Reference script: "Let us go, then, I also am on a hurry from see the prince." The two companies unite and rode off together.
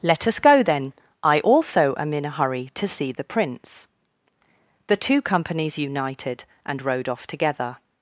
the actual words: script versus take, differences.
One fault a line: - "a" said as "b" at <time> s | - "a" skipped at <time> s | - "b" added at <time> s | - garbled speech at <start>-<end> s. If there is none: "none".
- "on" said as "in" at 2.1 s
- "from" said as "to" at 2.8 s
- "unite" said as "united" at 5.8 s